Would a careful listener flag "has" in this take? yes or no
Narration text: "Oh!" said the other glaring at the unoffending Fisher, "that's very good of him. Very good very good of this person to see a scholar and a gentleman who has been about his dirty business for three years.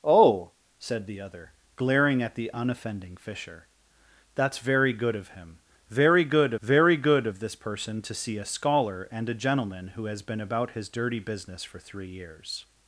no